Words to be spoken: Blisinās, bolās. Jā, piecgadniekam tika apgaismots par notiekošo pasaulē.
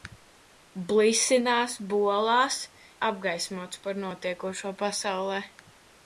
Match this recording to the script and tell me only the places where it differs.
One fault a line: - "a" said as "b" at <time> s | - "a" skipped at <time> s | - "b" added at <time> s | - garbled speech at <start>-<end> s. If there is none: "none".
- "Jā piecgadniekam tika" skipped at 2.6 s